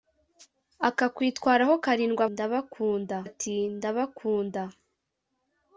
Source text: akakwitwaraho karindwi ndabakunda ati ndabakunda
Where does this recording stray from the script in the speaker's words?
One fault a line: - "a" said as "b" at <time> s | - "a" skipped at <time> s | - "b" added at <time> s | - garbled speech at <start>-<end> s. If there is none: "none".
none